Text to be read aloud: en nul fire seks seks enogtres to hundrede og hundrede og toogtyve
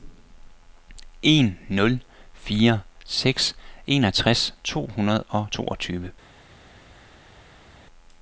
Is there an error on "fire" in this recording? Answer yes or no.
no